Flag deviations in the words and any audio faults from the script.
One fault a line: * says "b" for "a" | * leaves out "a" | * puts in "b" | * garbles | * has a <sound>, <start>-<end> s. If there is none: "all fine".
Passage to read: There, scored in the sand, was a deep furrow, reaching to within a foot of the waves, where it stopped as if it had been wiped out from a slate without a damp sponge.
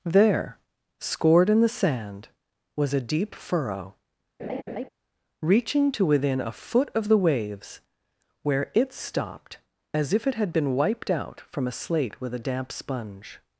* has a laugh, 4.4-4.9 s
* says "with" for "without"